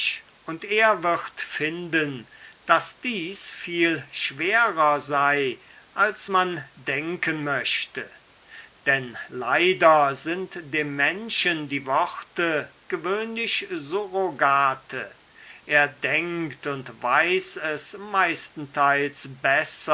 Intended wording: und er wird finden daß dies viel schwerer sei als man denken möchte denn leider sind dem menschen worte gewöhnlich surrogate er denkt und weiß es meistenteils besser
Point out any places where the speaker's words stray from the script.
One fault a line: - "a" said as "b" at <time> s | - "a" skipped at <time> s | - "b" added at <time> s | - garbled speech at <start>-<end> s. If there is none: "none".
- "die" added at 11.7 s